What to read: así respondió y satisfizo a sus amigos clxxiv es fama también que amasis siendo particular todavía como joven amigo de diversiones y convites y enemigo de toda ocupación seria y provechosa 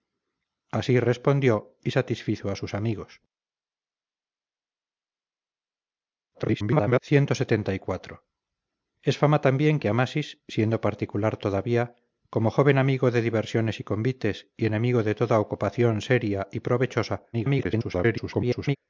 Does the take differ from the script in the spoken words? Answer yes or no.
yes